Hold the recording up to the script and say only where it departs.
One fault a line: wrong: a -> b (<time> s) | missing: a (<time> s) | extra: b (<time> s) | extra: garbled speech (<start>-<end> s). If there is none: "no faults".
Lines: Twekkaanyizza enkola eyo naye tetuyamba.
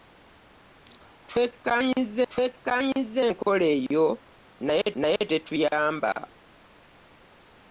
extra: twekkaanyizza (2.3 s)
extra: naye (5.0 s)